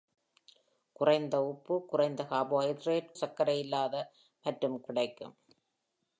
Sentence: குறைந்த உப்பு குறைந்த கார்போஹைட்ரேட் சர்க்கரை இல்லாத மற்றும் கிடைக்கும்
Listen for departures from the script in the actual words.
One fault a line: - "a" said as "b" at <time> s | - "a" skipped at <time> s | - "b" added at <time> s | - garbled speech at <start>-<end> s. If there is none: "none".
none